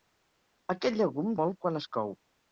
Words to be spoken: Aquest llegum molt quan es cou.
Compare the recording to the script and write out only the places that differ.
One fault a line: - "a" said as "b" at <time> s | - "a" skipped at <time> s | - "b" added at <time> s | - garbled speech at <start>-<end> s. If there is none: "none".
none